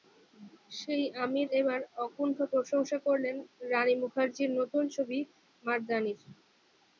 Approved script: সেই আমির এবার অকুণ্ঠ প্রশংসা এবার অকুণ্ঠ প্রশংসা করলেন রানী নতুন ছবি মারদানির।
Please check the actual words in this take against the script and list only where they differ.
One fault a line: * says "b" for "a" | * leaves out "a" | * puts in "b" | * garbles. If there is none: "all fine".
* leaves out "এবার অকুণ্ঠ প্রশংসা"
* puts in "মুখার্জির"